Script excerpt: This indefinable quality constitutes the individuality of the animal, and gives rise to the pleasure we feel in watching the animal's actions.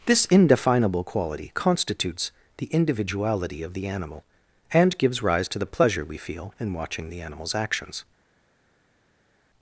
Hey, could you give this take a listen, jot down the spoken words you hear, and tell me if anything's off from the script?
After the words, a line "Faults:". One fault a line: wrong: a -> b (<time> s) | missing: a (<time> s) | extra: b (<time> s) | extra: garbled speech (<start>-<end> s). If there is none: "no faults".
This indefinable quality constitutes the individuality of the animal, and gives rise to the pleasure we feel in watching the animal's actions.
Faults:
no faults